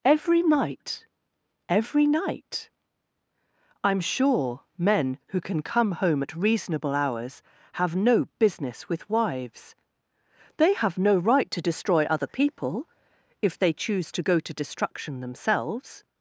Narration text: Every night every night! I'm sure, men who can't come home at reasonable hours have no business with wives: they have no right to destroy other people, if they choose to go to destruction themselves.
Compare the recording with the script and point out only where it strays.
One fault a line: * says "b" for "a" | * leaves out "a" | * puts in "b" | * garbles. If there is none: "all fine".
* says "can" for "can't"